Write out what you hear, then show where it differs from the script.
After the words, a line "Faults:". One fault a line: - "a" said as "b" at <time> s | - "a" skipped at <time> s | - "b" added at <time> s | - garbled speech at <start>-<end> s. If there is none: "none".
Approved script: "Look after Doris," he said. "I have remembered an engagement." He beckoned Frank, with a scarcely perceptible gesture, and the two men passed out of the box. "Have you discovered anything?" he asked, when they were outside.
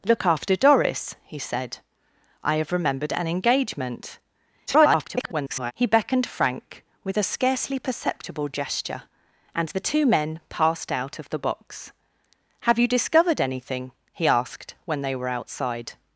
"Look after Doris," he said. "I have remembered an engagement." [garbled] He beckoned Frank, with a scarcely perceptible gesture, and the two men passed out of the box. "Have you discovered anything?" he asked, when they were outside.
Faults:
- garbled speech at 4.7-5.7 s